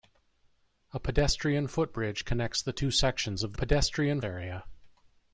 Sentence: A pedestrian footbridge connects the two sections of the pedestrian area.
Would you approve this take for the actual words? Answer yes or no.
yes